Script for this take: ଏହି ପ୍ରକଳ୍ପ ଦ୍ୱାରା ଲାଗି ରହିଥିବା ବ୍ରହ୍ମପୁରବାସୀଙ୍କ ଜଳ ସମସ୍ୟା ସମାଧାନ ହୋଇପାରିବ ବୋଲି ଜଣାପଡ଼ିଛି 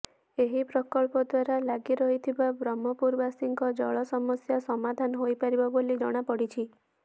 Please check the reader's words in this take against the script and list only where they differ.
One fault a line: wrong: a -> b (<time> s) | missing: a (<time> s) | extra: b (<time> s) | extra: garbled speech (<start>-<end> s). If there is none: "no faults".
no faults